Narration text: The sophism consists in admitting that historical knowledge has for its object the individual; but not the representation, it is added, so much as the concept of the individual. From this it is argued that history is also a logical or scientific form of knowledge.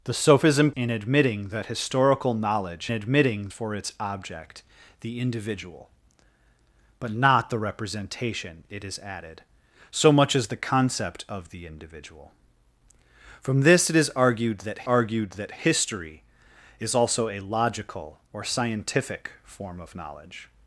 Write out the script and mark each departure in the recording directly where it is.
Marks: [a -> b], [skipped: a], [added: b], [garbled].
The sophism [skipped: consists] in admitting that historical knowledge [has -> admitting] for its object the individual; but not the representation, it is added, so much as the concept of the individual. From this it is argued that [added: argued that] history is also a logical or scientific form of knowledge.